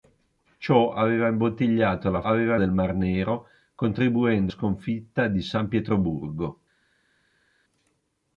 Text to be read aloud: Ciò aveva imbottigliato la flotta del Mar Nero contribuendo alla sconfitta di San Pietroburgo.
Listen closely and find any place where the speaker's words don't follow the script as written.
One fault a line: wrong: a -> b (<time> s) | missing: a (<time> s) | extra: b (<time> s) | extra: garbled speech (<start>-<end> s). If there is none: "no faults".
wrong: flotta -> aveva (2.2 s)
missing: alla (4.5 s)